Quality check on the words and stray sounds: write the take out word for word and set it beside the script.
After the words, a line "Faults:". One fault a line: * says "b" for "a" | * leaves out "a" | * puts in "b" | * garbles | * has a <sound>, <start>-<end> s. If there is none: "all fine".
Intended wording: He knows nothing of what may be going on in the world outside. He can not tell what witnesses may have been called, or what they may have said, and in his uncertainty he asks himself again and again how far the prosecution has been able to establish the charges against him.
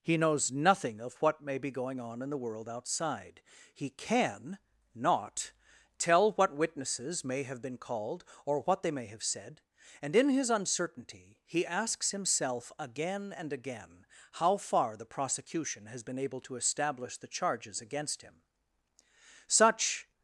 He knows nothing of what may be going on in the world outside. He can not tell what witnesses may have been called, or what they may have said, and in his uncertainty he asks himself again and again how far the prosecution has been able to establish the charges against him. Such
Faults:
* puts in "Such"